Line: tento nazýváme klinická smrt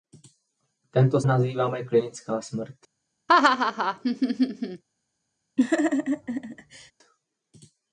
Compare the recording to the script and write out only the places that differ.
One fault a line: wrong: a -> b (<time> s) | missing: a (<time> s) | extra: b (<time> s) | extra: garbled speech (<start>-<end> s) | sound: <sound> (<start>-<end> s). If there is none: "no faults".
sound: laugh (3.3-4.8 s)
sound: laugh (5.6-6.9 s)